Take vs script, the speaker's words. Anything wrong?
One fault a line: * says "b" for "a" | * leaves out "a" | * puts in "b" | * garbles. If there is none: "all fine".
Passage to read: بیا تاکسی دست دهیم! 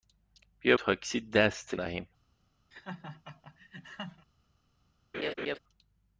all fine